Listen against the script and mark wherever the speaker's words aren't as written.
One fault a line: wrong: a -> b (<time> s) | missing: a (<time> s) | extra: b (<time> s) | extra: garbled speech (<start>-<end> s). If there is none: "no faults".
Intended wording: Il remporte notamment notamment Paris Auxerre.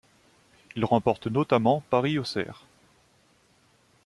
missing: notamment (1.8 s)